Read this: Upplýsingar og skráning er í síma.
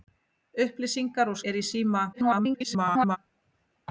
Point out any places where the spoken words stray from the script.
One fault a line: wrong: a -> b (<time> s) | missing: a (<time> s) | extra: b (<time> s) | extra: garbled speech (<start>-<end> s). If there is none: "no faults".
missing: skráning (1.4 s)
extra: garbled speech (2.1-3.2 s)